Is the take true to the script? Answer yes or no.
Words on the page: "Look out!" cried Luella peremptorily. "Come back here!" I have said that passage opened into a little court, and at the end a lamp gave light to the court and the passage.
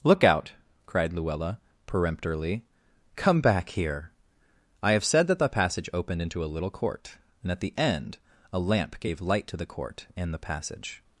no